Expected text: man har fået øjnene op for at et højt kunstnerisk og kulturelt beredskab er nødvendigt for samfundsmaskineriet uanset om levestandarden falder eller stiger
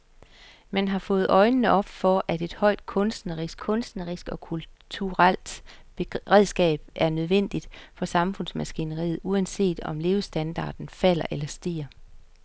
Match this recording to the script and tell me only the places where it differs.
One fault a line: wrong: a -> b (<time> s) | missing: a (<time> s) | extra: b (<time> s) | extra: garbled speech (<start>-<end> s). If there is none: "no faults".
extra: kunstnerisk (3.6 s)